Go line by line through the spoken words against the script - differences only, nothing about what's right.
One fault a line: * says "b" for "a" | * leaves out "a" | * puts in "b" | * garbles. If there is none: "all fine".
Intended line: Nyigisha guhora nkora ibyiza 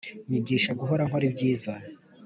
all fine